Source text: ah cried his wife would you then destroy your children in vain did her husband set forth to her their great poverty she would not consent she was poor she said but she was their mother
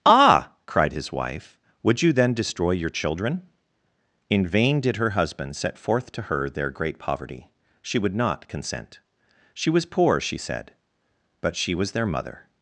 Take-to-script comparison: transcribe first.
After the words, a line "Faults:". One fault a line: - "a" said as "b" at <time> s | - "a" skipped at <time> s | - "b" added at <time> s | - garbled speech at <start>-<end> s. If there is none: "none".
ah cried his wife would you then destroy your children in vain did her husband set forth to her their great poverty she would not consent she was poor she said but she was their mother
Faults:
none